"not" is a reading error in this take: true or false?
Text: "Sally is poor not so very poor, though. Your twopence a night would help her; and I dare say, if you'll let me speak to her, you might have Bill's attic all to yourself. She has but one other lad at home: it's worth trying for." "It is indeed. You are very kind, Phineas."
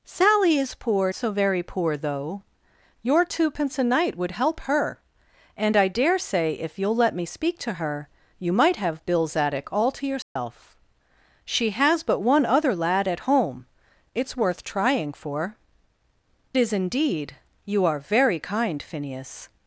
true